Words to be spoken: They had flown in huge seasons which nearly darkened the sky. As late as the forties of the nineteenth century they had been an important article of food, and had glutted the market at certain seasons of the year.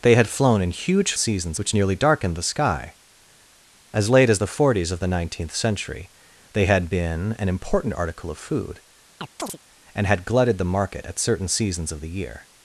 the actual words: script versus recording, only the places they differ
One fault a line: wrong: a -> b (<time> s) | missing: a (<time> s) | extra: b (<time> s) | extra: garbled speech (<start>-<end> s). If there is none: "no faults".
no faults